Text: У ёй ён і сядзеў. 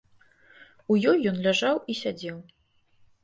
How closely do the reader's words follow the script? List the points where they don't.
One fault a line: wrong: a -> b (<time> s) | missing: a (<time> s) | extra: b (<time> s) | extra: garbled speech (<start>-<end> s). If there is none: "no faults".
extra: ляжаў (1.5 s)